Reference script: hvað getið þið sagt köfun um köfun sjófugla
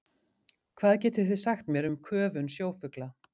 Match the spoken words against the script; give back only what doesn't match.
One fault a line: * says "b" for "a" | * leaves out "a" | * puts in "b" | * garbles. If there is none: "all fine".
* says "mér" for "köfun"